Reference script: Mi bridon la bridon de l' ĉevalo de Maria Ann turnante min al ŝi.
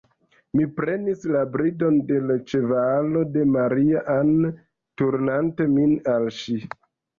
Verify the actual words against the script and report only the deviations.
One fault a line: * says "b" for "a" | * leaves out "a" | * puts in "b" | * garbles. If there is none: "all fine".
* says "prenis" for "bridon"